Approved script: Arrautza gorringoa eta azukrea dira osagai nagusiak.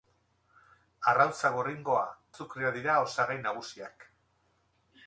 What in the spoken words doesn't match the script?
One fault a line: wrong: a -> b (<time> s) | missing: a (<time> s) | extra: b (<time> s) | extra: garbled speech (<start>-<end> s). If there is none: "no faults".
missing: eta (2.0 s)